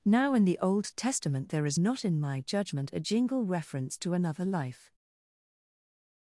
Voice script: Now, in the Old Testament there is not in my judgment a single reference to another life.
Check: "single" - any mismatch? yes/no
yes